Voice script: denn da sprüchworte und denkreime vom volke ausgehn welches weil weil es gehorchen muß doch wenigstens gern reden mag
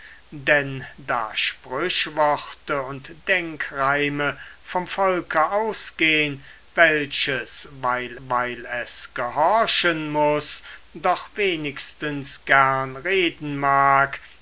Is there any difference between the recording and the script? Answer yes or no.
no